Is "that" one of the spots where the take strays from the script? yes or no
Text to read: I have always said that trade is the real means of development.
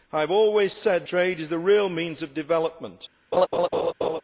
yes